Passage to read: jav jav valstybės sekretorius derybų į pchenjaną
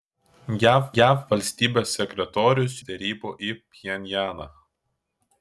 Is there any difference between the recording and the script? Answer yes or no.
no